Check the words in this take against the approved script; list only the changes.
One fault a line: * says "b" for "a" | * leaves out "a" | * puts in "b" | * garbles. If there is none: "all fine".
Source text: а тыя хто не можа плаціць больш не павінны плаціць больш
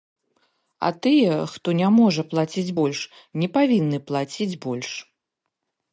all fine